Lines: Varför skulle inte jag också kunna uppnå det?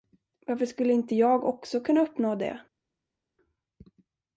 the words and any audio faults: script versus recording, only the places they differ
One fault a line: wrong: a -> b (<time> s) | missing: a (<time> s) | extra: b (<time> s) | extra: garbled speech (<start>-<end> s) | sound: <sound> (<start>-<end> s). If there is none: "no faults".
no faults